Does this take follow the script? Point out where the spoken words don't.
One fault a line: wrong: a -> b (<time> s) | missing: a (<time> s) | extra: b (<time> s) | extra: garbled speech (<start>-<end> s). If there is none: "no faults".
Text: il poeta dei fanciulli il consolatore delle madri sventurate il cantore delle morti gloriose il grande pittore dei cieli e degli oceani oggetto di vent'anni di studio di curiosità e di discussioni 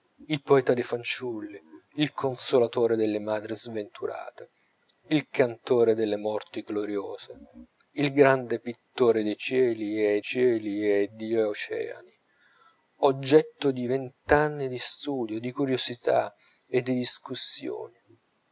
extra: cieli e (10.2 s)